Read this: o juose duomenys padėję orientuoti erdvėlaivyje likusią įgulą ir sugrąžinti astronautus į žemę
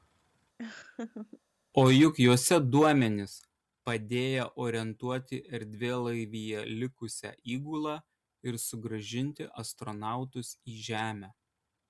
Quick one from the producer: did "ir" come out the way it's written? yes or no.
yes